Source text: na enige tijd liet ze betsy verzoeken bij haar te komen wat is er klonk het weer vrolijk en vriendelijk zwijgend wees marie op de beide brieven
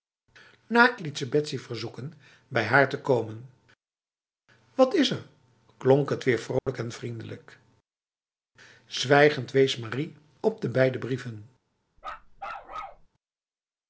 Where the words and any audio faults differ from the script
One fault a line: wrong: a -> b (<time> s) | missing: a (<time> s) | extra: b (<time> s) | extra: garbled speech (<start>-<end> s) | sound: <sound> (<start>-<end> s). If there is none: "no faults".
missing: enige tijd (1.0 s)
sound: dropout (6.6-6.7 s)
sound: bark (12.0-13.1 s)